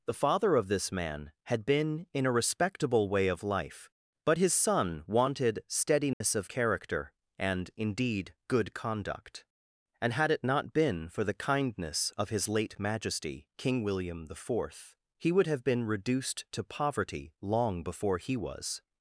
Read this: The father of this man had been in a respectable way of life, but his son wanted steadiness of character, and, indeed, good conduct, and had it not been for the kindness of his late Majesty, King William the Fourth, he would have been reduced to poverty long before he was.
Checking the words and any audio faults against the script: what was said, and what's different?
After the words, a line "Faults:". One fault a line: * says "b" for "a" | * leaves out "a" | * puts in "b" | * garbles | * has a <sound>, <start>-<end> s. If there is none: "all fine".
The father of this man had been in a respectable way of life, but his son wanted steadiness of character, and, indeed, good conduct, and had it not been for the kindness of his late Majesty, King William the Fourth, he would have been reduced to poverty long before he was.
Faults:
* has a dropout, 6.1-6.2 s